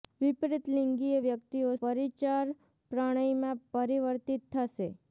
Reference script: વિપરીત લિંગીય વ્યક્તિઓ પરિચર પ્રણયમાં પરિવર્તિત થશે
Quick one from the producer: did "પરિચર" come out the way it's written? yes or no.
yes